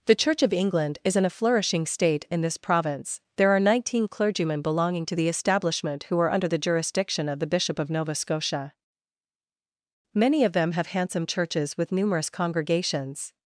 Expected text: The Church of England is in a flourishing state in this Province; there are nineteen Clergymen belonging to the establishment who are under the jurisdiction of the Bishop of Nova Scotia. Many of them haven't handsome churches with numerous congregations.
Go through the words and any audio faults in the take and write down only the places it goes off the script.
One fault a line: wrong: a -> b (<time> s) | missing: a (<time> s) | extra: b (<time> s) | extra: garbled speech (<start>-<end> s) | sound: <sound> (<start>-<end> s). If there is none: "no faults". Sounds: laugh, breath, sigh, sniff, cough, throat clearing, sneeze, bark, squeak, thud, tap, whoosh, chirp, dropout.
wrong: haven't -> have (10.7 s)